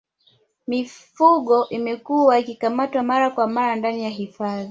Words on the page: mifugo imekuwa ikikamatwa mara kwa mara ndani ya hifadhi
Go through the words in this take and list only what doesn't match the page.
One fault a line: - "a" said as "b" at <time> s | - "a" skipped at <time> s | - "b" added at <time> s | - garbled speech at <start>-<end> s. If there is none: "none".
none